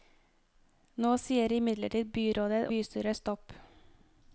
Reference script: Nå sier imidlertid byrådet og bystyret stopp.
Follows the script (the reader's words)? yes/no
no